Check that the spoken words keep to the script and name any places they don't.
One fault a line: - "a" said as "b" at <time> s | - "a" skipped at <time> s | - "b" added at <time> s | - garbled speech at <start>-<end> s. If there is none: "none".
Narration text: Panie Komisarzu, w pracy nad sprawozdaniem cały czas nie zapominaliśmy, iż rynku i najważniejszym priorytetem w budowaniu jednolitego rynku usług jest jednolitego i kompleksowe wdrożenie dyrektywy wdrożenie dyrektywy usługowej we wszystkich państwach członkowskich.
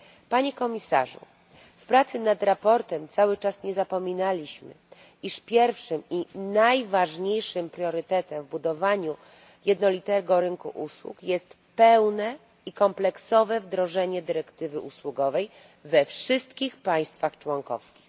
- "rynku" said as "pierwszym" at 5.4 s
- "jednolitego" said as "pełne" at 11.7 s
- "wdrożenie dyrektywy" skipped at 14.8 s